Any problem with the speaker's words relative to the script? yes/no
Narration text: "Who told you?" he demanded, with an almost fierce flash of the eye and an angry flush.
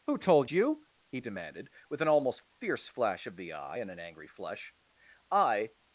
yes